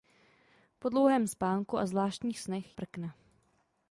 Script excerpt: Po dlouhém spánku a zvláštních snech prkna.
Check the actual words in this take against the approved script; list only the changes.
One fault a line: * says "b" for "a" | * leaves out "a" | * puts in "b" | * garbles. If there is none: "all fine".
all fine